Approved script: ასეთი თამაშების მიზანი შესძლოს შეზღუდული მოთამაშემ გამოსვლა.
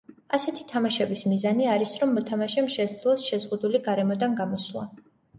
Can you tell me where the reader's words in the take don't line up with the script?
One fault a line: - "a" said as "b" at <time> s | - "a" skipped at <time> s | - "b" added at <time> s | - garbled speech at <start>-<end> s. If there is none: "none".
- "არის რომ მოთამაშემ" added at 1.7 s
- "მოთამაშემ" said as "გარემოდან" at 3.9 s